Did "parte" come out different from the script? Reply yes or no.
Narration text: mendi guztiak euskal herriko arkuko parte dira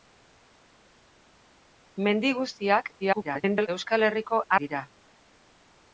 yes